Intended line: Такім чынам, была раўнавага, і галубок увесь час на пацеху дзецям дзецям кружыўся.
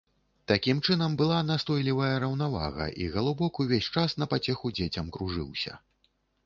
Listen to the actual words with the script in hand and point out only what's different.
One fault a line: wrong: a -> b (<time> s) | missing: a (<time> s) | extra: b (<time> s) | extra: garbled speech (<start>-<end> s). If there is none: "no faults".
extra: настойлівая (1.5 s)
missing: дзецям (5.1 s)